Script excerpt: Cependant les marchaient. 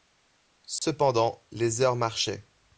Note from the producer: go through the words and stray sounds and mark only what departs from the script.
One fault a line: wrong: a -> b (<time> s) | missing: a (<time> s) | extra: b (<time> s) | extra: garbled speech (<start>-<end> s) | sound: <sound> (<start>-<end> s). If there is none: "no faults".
sound: dropout (0.8-0.8 s)
extra: heures (1.8 s)